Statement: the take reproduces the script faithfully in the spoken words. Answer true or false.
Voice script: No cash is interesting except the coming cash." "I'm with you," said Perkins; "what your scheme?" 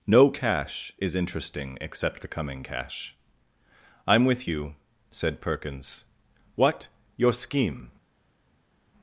true